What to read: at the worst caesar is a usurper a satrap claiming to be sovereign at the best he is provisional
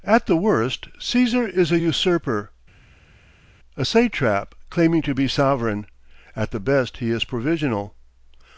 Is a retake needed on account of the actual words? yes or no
no